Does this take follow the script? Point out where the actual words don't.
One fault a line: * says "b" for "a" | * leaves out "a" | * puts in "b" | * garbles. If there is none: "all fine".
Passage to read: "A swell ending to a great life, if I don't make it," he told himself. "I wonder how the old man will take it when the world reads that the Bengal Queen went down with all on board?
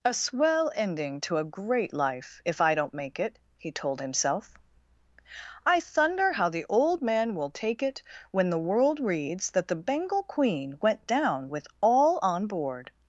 * says "thunder" for "wonder"